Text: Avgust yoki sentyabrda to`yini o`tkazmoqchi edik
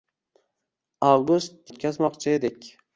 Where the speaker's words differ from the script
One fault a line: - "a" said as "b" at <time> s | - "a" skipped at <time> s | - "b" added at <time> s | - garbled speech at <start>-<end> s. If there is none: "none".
- "yoki sentyabrda to`yini" skipped at 1.7 s